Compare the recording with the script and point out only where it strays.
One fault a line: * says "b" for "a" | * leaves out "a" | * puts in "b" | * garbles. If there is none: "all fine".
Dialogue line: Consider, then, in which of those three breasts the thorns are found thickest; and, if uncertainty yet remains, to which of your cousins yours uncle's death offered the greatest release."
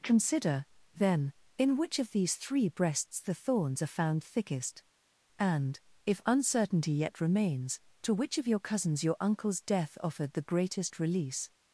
* says "these" for "those"
* says "your" for "yours"